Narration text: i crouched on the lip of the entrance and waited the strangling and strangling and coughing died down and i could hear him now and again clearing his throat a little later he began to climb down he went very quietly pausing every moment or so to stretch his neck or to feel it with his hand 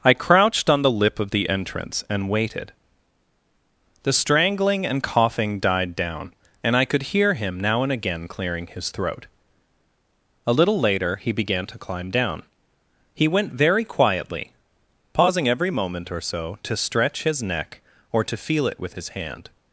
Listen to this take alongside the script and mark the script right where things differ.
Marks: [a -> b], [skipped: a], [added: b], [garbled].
i crouched on the lip of the entrance and waited the strangling and [skipped: strangling and] coughing died down and i could hear him now and again clearing his throat a little later he began to climb down he went very quietly pausing every moment or so to stretch his neck or to feel it with his hand